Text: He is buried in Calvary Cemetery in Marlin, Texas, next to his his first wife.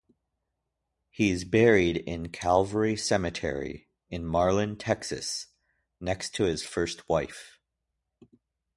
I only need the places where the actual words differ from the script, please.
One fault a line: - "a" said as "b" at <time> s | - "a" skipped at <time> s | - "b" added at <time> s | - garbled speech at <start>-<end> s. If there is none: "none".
- "his" skipped at 6.6 s